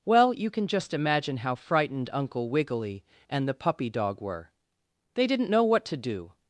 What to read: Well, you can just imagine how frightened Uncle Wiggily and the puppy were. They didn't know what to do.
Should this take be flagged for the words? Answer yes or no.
yes